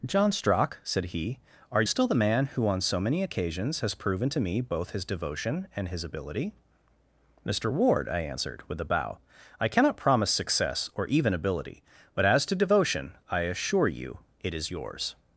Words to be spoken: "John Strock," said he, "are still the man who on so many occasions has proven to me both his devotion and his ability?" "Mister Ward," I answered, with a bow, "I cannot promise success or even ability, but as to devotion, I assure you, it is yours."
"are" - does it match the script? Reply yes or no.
yes